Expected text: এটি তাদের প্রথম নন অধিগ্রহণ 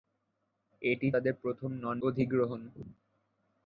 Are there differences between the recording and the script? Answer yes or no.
no